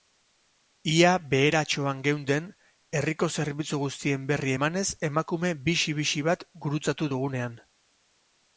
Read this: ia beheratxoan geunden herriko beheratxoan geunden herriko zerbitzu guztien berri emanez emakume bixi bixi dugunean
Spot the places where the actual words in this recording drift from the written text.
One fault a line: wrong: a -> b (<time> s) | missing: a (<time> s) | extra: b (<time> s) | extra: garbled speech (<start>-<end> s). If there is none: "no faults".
missing: beheratxoan geunden herriko (3.3 s)
extra: bat gurutzatu (6.3 s)